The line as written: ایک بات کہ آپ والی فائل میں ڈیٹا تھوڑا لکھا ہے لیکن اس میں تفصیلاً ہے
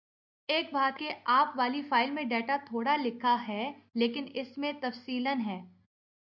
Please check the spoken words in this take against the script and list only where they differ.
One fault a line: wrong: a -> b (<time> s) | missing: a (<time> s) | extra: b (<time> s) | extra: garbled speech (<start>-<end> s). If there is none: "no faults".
no faults